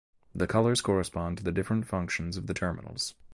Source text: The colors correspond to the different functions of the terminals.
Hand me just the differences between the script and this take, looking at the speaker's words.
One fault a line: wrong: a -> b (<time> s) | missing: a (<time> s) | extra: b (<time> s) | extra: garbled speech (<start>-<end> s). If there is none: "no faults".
no faults